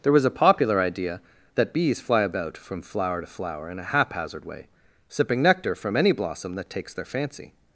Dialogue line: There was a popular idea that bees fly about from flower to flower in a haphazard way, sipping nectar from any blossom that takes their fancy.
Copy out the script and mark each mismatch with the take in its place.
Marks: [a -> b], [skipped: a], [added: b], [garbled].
There was a popular idea that bees fly about from flower to flower in a haphazard way, sipping nectar from any blossom that takes their fancy.